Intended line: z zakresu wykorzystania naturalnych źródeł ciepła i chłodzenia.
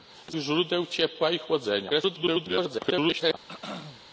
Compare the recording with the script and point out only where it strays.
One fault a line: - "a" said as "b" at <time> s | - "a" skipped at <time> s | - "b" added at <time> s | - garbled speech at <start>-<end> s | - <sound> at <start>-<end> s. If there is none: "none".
- "zakresu wykorzystania naturalnych" skipped at 0.3 s
- garbled speech at 1.9-3.3 s
- throat clearing at 3.5-4.0 s